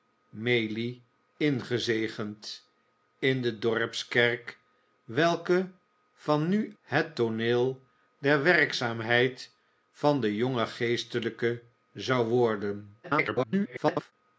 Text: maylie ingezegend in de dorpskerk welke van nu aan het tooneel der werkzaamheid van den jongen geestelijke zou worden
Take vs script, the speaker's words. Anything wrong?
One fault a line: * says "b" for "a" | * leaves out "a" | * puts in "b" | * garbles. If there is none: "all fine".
* leaves out "aan"
* garbles